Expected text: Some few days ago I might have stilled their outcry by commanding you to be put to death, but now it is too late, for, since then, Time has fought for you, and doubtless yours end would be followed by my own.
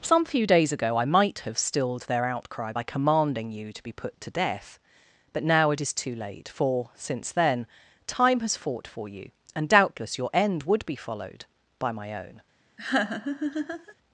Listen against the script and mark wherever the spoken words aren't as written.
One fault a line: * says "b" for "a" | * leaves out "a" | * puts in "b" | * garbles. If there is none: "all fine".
* says "your" for "yours"